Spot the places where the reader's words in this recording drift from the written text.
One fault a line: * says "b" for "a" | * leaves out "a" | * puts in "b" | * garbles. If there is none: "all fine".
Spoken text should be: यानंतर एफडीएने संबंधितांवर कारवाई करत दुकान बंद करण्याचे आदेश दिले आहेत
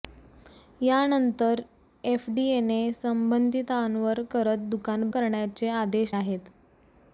* leaves out "कारवाई"
* leaves out "बंद"
* leaves out "दिले"